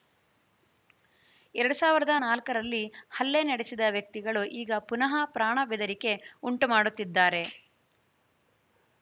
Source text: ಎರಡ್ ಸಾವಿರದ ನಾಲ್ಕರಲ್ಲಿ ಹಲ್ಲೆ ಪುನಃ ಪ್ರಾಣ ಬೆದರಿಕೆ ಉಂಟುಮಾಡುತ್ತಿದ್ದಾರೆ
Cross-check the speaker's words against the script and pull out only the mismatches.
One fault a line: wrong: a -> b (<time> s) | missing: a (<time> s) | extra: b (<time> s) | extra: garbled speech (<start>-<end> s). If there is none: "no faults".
extra: ನಡೆಸಿದ ವ್ಯಕ್ತಿಗಳು ಈಗ (3.4 s)